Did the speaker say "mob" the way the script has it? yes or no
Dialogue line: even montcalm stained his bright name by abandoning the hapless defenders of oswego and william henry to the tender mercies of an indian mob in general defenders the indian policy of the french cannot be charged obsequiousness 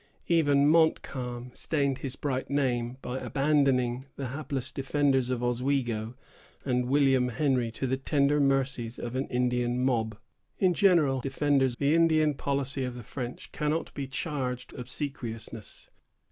yes